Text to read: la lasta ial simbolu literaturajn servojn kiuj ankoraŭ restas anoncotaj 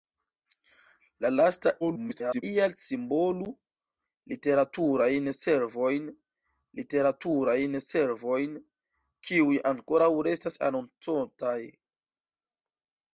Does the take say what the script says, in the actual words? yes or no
no